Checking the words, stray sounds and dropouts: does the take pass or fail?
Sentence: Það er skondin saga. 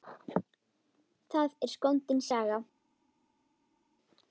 pass